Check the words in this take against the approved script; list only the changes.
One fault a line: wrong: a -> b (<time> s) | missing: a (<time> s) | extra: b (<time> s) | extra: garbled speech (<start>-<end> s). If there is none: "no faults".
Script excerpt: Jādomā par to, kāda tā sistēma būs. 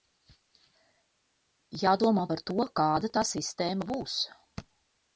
no faults